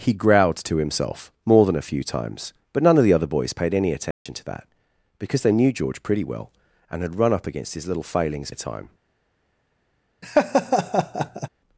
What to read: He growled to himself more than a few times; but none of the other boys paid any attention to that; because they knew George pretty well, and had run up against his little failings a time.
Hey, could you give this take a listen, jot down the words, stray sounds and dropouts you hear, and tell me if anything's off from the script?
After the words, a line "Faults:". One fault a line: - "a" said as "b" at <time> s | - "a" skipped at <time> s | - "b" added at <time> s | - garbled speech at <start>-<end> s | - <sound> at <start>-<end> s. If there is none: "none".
He growled to himself more than a few times; but none of the other boys paid any attention to that; because they knew George pretty well, and had run up against his little failings a time.
Faults:
- dropout at 4.1-4.3 s
- laugh at 10.2-11.5 s